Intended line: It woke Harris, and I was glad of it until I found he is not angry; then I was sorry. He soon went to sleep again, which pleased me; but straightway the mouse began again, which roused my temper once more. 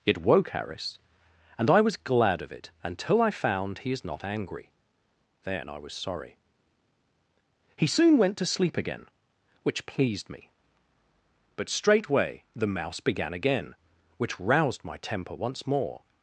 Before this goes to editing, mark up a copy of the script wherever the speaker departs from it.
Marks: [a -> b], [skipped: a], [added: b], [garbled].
It woke Harris, and I was glad of it until I found he is not angry; then I was sorry. He soon went to sleep again, which pleased me; but straightway the mouse began again, which roused my temper once more.